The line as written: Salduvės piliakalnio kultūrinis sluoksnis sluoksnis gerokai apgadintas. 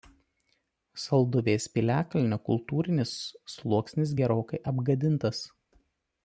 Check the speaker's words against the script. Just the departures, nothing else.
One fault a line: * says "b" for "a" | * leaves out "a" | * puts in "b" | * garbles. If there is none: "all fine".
* leaves out "sluoksnis"